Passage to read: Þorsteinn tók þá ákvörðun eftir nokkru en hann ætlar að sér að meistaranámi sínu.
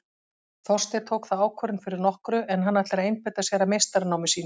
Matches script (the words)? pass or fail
fail